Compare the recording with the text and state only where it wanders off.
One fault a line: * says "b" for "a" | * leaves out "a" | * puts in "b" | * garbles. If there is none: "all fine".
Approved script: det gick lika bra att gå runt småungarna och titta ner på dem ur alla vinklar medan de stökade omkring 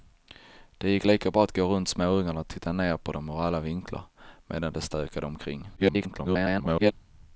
* garbles